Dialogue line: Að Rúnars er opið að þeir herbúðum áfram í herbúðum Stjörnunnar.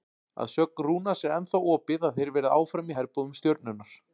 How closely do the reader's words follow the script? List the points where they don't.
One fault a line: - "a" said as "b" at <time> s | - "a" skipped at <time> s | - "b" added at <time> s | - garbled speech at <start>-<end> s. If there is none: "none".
- "sögn" added at 0.5 s
- "ennþá" added at 1.4 s
- "herbúðum" said as "verði" at 2.4 s